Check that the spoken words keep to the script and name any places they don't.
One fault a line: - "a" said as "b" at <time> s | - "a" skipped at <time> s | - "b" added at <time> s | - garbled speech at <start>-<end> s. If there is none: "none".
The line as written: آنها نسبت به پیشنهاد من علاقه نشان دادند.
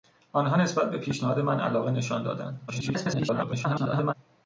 - garbled speech at 2.7-4.1 s